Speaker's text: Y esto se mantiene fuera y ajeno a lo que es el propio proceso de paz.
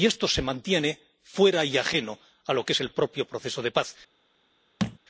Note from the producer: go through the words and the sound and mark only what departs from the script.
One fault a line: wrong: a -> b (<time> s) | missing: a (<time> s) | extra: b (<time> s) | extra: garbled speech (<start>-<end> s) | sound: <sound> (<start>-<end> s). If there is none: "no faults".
sound: thud (4.8-5.0 s)